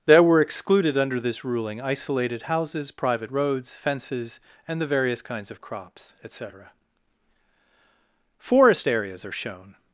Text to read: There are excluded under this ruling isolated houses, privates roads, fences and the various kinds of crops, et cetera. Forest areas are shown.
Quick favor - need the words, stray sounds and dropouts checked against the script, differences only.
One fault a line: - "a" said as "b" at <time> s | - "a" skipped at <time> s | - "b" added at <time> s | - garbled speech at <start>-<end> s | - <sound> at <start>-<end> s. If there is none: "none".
- "are" said as "were" at 0.2 s
- "privates" said as "private" at 2.9 s